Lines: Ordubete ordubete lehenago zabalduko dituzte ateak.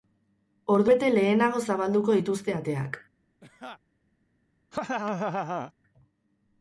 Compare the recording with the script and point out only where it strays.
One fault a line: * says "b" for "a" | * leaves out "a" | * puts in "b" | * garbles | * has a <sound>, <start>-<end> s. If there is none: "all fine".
* leaves out "ordubete"
* has a laugh, 3.4-3.8 s
* has a laugh, 4.7-5.7 s